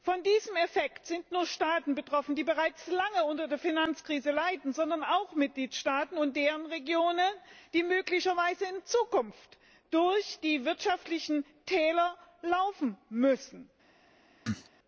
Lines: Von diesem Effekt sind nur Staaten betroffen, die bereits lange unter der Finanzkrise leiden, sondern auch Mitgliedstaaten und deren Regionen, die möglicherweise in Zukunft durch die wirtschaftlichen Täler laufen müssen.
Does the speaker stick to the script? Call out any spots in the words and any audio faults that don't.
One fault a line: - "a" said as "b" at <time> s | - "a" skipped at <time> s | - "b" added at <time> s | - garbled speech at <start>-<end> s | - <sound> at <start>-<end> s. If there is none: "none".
- cough at 14.5-14.7 s